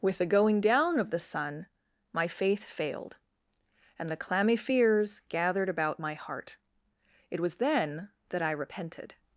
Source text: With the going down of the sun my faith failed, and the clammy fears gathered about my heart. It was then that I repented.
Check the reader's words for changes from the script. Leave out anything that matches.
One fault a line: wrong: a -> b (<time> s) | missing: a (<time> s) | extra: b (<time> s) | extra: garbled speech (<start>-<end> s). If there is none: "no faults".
no faults